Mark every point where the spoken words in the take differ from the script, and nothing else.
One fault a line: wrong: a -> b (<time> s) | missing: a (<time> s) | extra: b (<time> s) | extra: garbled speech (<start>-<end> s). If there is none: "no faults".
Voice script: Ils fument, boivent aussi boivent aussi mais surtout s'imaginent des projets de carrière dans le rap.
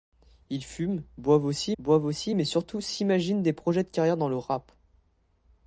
no faults